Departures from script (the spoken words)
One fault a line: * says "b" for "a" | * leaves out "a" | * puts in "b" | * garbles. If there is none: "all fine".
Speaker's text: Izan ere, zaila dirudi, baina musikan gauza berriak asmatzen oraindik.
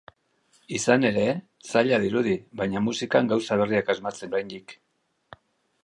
all fine